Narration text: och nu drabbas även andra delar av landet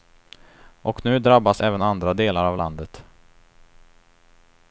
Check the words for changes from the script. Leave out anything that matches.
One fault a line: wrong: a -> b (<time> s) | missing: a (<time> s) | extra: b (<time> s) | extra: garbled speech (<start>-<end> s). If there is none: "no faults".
no faults